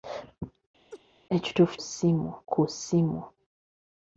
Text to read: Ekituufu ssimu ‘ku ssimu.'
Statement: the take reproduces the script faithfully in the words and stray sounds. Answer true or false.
false